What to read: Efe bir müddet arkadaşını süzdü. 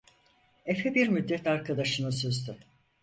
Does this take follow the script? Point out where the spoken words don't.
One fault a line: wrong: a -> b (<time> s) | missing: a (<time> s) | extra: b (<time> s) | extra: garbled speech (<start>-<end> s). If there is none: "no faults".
no faults